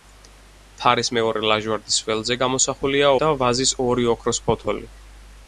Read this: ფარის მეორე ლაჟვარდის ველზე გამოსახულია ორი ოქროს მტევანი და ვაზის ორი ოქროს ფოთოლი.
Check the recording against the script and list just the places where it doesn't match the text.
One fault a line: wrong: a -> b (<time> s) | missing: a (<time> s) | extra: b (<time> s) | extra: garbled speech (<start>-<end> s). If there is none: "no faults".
missing: ორი ოქროს მტევანი (3.1 s)